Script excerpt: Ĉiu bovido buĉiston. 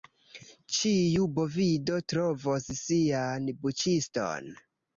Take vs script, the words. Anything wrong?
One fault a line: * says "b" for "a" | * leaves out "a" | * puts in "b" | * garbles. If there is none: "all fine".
* puts in "trovos sian"